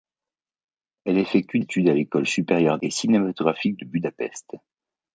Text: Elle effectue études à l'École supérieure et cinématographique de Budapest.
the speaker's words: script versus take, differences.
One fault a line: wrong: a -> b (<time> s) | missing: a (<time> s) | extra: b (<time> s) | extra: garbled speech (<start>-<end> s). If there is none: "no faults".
no faults